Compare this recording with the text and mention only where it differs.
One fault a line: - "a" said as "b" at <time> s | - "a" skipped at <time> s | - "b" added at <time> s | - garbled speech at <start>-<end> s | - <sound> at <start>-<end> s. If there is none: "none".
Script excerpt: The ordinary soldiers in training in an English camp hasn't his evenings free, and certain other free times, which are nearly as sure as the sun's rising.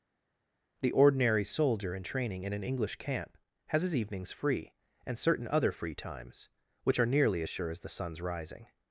- "soldiers" said as "soldier" at 1.4 s
- "hasn't" said as "has" at 3.7 s